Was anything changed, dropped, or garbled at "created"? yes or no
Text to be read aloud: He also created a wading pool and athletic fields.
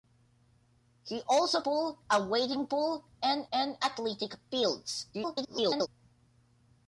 yes